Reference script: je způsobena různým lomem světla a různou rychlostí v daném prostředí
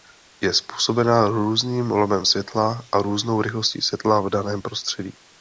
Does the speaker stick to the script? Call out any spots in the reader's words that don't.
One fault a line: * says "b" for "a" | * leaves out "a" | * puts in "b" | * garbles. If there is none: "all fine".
* puts in "světla"